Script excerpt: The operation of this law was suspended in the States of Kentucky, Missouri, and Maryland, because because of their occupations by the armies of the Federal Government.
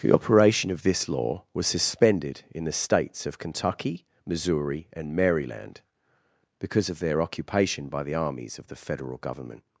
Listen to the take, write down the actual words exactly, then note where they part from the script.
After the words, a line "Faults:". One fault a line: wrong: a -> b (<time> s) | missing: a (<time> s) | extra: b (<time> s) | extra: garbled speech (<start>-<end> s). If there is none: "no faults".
The operation of this law was suspended in the States of Kentucky, Missouri, and Maryland, because of their occupation by the armies of the Federal Government.
Faults:
missing: because (6.9 s)
wrong: occupations -> occupation (7.2 s)